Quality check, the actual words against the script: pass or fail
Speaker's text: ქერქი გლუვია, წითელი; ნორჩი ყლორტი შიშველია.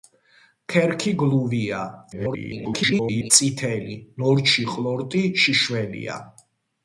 fail